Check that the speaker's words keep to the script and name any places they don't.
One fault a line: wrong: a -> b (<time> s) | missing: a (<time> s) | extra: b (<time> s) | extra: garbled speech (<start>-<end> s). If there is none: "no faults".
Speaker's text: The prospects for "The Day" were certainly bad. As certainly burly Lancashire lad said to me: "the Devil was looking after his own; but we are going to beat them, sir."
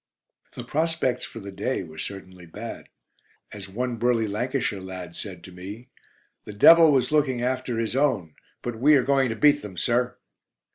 wrong: certainly -> one (3.7 s)